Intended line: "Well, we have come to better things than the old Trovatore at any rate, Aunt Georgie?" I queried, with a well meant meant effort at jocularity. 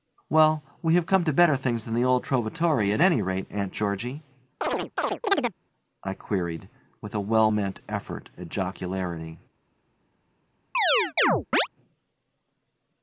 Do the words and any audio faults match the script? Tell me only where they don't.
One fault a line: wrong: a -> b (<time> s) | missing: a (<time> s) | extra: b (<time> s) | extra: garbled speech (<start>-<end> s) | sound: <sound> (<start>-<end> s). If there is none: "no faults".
sound: chirp (4.6-5.5 s)
missing: meant (7.8 s)
sound: chirp (10.7-11.7 s)